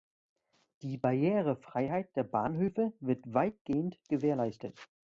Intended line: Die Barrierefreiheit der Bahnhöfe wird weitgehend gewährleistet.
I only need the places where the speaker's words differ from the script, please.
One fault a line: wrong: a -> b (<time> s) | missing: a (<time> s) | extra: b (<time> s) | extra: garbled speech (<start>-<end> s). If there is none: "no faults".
no faults